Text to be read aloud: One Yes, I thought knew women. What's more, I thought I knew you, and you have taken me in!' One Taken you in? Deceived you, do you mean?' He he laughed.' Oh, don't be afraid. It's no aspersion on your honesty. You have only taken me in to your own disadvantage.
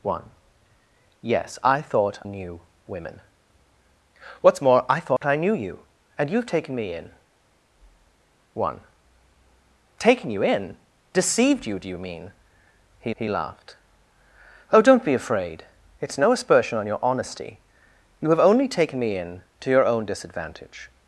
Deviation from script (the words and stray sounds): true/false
true